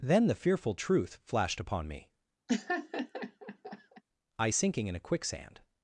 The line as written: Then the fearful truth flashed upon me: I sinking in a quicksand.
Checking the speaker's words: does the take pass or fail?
pass